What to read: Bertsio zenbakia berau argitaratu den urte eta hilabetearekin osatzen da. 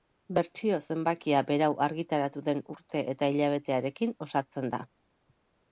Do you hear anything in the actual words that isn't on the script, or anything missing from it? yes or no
no